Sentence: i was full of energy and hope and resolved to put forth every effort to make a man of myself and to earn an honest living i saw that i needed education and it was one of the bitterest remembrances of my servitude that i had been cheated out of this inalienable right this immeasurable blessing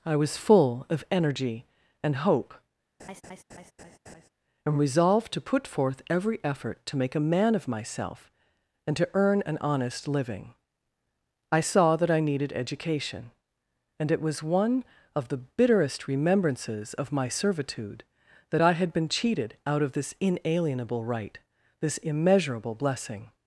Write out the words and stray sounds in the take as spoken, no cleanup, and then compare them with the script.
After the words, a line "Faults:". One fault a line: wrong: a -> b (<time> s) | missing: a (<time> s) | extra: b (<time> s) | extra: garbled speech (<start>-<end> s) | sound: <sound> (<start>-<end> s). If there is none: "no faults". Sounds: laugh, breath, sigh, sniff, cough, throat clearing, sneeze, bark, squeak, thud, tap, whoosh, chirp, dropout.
i was full of energy and hope and resolved to put forth every effort to make a man of myself and to earn an honest living i saw that i needed education and it was one of the bitterest remembrances of my servitude that i had been cheated out of this inalienable right this immeasurable blessing
Faults:
sound: laugh (3.0-4.3 s)